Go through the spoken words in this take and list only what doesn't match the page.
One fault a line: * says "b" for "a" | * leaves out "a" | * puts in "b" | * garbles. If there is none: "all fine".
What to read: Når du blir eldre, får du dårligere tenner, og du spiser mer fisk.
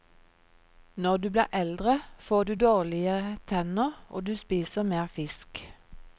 all fine